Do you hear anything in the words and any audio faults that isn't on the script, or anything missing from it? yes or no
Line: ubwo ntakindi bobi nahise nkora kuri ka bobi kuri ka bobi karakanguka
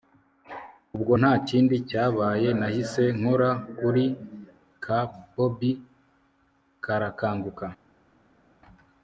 yes